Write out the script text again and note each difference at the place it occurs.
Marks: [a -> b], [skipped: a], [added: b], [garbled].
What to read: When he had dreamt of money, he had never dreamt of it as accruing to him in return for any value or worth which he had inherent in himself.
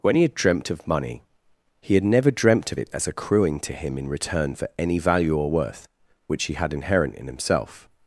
When he had dreamt of money, he had never dreamt of it as accruing to him in return for any value or worth which he had inherent in himself.